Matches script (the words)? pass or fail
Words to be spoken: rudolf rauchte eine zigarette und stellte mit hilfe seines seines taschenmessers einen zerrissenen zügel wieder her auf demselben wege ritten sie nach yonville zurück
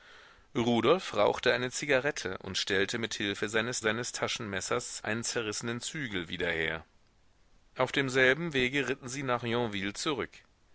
pass